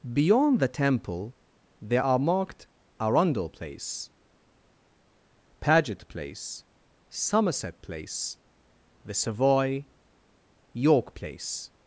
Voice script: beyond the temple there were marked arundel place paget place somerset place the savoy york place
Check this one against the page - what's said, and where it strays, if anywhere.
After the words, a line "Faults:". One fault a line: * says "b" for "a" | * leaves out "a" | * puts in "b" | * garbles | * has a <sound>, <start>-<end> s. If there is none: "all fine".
beyond the temple there are marked arundel place paget place somerset place the savoy york place
Faults:
* says "are" for "were"